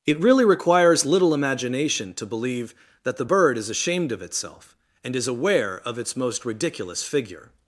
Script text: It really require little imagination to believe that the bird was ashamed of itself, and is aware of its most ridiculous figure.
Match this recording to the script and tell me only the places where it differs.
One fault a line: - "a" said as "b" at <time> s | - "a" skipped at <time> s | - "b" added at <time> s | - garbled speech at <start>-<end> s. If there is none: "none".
- "require" said as "requires" at 0.5 s
- "was" said as "is" at 3.6 s